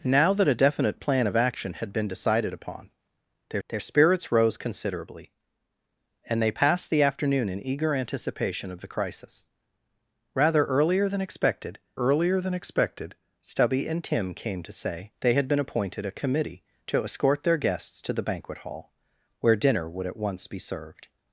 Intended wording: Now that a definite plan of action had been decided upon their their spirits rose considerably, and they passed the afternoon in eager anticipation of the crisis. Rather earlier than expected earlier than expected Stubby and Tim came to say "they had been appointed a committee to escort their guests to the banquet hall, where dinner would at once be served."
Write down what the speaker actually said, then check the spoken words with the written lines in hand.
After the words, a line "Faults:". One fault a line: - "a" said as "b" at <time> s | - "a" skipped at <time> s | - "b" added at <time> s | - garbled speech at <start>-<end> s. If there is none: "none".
Now that a definite plan of action had been decided upon their their spirits rose considerably, and they passed the afternoon in eager anticipation of the crisis. Rather earlier than expected earlier than expected Stubby and Tim came to say "they had been appointed a committee to escort their guests to the banquet hall, where dinner would at once be served."
Faults:
none